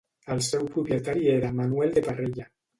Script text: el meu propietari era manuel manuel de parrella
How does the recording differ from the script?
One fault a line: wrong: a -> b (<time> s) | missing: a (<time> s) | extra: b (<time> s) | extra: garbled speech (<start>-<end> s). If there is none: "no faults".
wrong: meu -> seu (0.5 s)
missing: manuel (2.0 s)